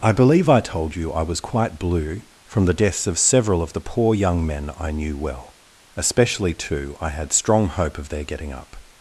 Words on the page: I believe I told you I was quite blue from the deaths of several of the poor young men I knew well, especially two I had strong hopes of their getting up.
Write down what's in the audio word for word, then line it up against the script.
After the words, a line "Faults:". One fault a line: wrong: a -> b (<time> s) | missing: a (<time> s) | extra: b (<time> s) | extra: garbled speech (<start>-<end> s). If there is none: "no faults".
I believe I told you I was quite blue from the deaths of several of the poor young men I knew well, especially two I had strong hope of their getting up.
Faults:
wrong: hopes -> hope (7.7 s)